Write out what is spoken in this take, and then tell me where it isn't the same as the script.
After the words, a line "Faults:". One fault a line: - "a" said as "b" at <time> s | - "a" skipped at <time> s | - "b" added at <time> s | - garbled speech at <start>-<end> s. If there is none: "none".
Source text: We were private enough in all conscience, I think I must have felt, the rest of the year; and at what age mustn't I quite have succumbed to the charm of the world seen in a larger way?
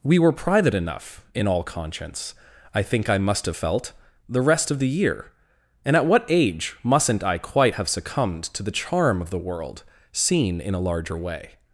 We were private enough in all conscience, I think I must have felt, the rest of the year; and at what age mustn't I quite have succumbed to the charm of the world seen in a larger way?
Faults:
none